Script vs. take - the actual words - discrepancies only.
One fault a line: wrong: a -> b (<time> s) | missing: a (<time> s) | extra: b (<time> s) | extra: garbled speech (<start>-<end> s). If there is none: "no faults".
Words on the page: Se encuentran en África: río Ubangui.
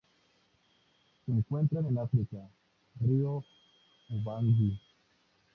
no faults